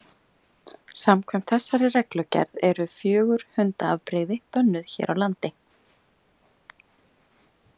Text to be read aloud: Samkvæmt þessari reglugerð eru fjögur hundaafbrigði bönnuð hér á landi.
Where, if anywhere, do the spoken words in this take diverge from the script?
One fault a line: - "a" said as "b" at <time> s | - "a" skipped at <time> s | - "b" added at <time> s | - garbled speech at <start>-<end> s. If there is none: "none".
none